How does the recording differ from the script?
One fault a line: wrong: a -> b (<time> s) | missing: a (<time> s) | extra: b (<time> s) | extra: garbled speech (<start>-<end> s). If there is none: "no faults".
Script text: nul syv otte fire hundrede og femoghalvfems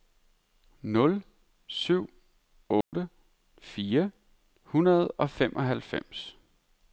no faults